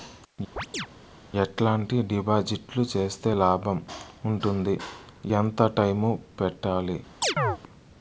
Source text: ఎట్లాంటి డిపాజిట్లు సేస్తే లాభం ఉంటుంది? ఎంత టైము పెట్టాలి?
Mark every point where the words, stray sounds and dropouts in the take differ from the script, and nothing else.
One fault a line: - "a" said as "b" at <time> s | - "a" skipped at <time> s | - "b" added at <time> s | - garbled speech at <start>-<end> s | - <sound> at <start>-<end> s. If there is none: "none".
- chirp at 0.6-0.9 s
- chirp at 7.2-7.6 s